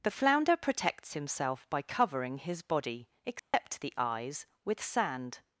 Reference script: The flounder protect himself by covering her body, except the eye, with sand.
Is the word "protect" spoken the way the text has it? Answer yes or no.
no